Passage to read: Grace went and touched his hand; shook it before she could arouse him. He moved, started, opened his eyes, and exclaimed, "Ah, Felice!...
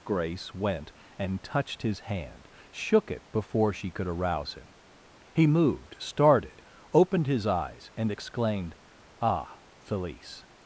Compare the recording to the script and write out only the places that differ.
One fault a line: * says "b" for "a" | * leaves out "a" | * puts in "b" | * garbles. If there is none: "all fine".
all fine